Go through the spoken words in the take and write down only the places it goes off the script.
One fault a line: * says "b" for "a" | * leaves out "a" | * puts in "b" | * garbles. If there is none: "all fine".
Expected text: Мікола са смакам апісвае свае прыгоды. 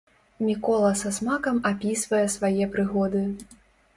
all fine